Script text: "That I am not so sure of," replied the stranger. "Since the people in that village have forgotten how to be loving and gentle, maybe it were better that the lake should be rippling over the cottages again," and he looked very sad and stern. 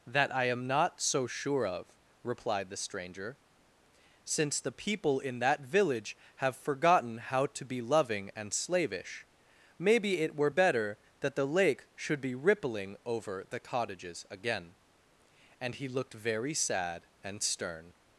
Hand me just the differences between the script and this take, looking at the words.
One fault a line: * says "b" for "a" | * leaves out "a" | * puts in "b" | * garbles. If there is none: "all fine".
* says "slavish" for "gentle"